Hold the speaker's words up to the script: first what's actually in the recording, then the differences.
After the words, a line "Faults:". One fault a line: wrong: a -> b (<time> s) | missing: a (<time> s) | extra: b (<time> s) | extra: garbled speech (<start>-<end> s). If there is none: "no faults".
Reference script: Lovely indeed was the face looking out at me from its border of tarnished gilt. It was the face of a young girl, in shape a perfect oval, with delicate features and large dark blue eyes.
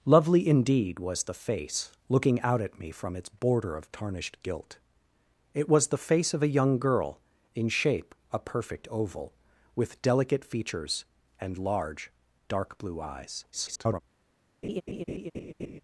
Lovely indeed was the face looking out at me from its border of tarnished gilt. It was the face of a young girl, in shape a perfect oval, with delicate features and large dark blue eyes. [garbled]
Faults:
extra: garbled speech (13.5-14.0 s)